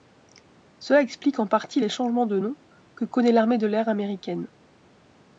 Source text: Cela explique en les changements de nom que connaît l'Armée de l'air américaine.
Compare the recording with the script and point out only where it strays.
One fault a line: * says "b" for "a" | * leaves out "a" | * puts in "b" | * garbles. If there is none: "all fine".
* puts in "partie"